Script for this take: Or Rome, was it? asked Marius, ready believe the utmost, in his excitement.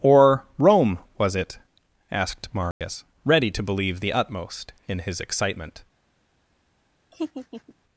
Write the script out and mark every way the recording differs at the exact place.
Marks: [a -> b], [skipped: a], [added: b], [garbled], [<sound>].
Or Rome, was it? asked Marius, [dropout] ready [added: to] believe the utmost, in his excitement. [laugh]